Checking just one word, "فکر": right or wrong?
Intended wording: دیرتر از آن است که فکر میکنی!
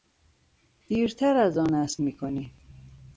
wrong